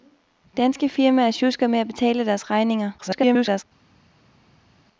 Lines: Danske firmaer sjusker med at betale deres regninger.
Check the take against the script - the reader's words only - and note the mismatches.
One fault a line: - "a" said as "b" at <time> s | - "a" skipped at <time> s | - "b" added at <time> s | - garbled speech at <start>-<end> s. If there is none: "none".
- garbled speech at 3.0-3.6 s